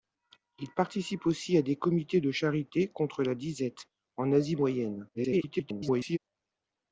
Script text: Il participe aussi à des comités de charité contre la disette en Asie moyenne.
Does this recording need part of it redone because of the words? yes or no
yes